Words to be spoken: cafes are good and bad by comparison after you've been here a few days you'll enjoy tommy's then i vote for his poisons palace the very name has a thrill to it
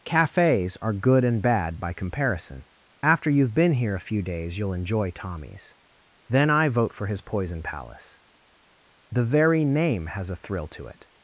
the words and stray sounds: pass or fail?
fail